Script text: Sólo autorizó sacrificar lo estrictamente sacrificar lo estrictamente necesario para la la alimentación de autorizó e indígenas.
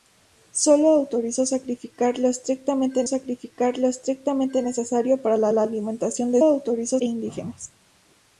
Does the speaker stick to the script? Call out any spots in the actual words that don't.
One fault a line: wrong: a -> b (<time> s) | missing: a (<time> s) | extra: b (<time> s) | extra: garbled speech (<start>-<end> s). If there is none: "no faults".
no faults